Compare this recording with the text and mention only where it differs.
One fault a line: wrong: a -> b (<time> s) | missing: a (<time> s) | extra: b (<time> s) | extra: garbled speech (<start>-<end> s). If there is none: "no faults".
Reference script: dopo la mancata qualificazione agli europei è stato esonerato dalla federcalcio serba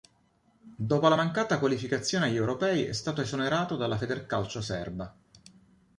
no faults